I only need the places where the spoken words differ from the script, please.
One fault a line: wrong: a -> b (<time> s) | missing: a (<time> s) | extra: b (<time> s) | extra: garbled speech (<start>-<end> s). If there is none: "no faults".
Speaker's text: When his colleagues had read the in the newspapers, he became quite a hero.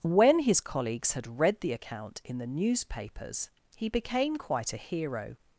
extra: account (1.7 s)